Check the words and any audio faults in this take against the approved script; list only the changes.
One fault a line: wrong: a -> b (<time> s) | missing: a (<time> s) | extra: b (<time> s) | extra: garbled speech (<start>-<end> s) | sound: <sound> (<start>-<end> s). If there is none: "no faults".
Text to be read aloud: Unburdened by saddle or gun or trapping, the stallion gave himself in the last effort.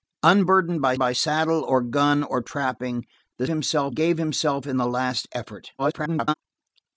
extra: by (1.0 s)
wrong: stallion -> himself (3.5 s)
extra: garbled speech (5.8-6.3 s)